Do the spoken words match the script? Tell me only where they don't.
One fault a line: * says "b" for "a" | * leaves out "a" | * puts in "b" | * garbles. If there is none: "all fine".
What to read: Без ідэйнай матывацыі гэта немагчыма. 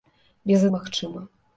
* leaves out "ідэйнай матывацыі гэта"